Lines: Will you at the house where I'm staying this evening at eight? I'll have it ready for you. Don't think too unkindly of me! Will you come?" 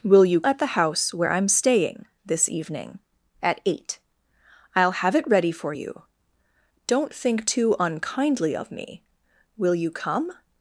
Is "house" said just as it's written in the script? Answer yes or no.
yes